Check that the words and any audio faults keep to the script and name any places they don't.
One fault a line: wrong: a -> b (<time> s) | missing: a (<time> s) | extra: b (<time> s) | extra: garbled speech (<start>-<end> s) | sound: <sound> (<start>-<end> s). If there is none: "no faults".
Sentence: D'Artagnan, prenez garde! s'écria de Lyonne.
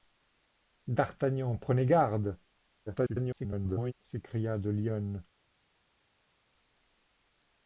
extra: garbled speech (2.9-3.9 s)